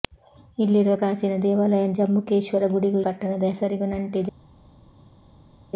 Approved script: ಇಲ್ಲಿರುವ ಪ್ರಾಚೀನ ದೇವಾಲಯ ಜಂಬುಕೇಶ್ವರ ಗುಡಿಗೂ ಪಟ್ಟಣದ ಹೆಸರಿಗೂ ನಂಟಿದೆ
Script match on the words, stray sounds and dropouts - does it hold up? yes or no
yes